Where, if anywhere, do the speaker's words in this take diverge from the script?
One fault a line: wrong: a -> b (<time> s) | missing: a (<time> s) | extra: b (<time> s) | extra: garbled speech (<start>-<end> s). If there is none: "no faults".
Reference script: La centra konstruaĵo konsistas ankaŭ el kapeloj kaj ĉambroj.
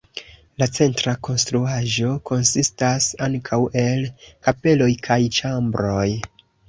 no faults